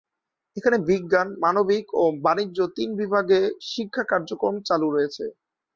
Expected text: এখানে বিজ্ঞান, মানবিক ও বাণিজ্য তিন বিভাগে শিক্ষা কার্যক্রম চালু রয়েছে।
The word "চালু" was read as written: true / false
true